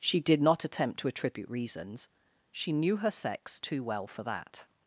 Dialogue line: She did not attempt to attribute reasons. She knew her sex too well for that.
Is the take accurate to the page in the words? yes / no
yes